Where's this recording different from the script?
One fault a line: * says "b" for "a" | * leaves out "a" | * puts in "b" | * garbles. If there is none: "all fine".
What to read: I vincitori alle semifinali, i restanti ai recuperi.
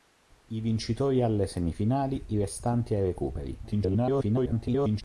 * garbles